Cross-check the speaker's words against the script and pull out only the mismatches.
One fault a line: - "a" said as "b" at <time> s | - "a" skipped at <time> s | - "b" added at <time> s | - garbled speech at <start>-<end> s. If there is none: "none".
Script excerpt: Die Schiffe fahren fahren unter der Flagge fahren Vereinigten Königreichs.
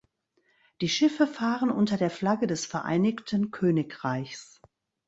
- "fahren" skipped at 1.7 s
- "fahren" said as "des" at 2.5 s